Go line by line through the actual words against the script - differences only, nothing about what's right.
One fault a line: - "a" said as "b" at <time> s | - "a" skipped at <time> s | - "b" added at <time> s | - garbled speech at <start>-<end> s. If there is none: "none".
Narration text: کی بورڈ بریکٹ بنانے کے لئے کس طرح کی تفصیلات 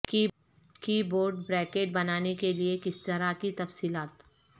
none